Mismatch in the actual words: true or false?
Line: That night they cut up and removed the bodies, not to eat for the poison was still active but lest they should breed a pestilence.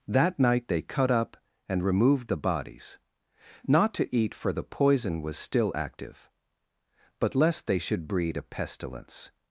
false